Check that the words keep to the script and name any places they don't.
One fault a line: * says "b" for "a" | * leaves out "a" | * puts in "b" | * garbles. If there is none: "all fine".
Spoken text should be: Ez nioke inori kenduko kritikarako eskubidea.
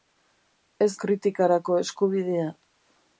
* leaves out "nioke inori kenduko"